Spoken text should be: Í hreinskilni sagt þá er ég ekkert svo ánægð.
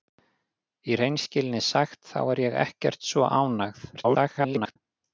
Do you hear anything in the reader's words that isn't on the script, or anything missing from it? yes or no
yes